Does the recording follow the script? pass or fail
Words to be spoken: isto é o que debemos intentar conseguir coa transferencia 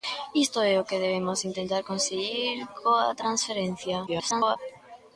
fail